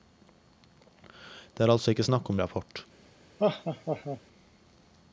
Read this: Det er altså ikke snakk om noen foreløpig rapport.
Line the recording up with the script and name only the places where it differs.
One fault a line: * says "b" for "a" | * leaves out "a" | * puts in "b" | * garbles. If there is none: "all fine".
* leaves out "noen foreløpig"